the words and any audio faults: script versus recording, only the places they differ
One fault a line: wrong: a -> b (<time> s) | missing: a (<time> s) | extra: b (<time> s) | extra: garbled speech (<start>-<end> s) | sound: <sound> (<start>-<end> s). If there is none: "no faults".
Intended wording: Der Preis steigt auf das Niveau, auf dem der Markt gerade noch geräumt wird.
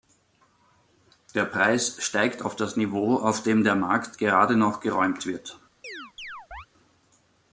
sound: chirp (5.8-6.7 s)